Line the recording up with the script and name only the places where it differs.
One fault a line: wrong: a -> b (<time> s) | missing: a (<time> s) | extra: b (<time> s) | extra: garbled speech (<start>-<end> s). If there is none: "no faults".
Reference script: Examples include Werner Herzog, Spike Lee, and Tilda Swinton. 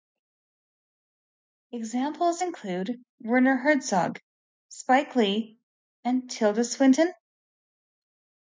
no faults